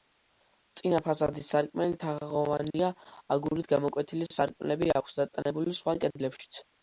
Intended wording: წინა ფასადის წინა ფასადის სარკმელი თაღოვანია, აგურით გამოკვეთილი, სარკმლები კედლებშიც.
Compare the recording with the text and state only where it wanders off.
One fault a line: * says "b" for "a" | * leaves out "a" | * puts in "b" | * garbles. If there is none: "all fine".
* leaves out "წინა ფასადის"
* puts in "აქვს დატანებული სხვა"